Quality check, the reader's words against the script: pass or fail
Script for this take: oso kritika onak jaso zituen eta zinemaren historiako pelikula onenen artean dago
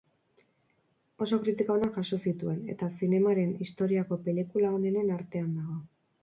pass